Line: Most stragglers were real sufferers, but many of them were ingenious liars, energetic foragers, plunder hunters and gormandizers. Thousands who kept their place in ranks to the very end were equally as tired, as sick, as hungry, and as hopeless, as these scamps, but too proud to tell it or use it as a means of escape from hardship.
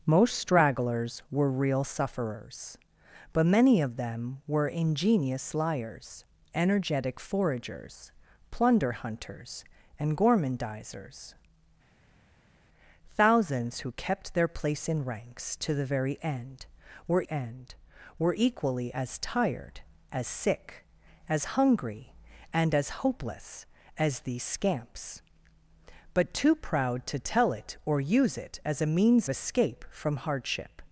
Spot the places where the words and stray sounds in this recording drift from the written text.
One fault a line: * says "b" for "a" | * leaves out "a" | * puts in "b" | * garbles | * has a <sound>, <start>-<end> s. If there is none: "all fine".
* puts in "end were"
* leaves out "of"